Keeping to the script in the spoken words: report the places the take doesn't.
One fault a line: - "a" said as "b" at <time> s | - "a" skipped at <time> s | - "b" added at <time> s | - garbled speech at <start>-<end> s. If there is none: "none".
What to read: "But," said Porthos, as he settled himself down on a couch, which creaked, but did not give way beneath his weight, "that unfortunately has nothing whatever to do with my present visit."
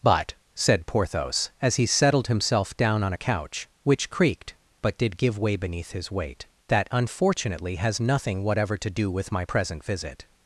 - "not" skipped at 5.2 s